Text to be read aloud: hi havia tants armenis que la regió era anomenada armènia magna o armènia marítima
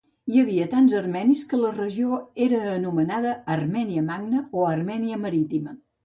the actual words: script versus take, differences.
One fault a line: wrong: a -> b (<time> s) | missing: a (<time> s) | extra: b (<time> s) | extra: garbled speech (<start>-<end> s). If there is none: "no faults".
no faults